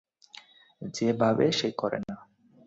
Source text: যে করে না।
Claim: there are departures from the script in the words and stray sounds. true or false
true